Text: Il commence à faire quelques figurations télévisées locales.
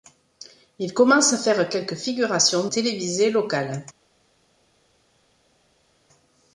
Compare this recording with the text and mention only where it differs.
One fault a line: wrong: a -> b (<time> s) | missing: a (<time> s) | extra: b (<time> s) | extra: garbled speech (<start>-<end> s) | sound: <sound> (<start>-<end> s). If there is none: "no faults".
no faults